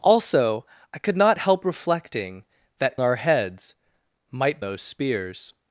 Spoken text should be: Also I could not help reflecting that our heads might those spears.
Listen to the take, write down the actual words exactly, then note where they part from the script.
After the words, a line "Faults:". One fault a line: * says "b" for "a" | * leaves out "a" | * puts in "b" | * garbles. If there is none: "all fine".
Also I could not help reflecting that our heads might those spears.
Faults:
all fine